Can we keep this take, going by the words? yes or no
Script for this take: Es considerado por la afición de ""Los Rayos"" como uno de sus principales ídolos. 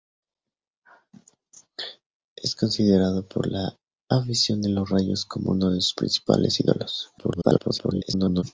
no